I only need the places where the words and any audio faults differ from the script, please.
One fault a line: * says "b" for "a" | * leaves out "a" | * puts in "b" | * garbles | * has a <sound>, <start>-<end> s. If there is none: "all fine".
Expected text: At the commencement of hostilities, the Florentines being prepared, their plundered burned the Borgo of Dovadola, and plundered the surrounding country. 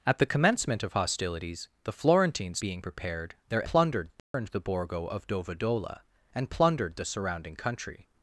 * has a dropout, 4.2-4.3 s